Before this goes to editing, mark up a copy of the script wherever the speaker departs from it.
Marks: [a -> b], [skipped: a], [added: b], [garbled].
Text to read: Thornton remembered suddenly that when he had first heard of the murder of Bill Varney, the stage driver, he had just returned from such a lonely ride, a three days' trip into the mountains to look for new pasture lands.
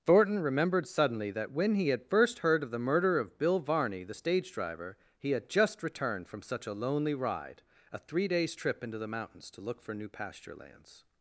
Thornton remembered suddenly that when he had first heard of the murder of Bill Varney, the stage driver, he had just returned from such a lonely ride, a three days' trip into the mountains to look for new pasture lands.